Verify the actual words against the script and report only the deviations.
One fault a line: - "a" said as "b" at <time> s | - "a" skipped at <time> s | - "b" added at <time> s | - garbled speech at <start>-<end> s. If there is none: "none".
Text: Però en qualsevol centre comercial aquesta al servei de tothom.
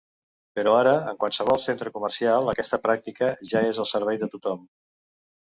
- "ara" added at 0.8 s
- "pràctica ja és" added at 2.9 s